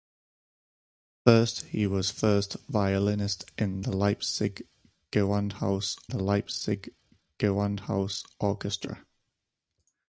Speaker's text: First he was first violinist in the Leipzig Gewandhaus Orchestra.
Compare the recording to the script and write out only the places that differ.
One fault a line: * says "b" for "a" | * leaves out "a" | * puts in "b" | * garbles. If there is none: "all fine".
* puts in "the Leipzig Gewandhaus"